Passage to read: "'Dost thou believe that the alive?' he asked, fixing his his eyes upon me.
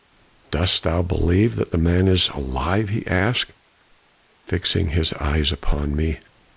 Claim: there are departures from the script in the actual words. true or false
true